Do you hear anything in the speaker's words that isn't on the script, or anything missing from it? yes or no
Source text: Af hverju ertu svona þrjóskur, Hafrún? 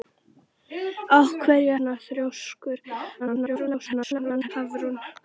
yes